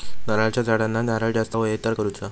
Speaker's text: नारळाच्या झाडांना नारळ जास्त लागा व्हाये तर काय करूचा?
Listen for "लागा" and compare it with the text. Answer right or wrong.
wrong